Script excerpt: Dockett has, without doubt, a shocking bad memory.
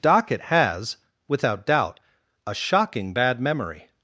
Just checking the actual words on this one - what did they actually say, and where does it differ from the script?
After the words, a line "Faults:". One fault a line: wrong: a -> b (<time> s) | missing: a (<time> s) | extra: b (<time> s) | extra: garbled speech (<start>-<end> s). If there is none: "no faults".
Dockett has, without doubt, a shocking bad memory.
Faults:
no faults